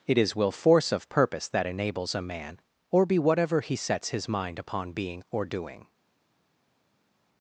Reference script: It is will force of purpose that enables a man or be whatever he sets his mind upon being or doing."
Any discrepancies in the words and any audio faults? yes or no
no